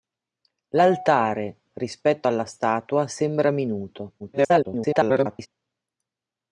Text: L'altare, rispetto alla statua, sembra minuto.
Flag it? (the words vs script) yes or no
yes